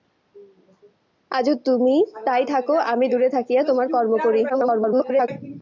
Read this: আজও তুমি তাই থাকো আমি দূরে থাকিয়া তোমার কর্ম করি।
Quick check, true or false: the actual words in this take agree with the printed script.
false